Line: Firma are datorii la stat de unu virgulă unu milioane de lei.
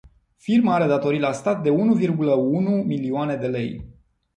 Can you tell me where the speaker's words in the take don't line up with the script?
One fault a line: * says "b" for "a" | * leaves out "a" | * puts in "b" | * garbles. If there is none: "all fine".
all fine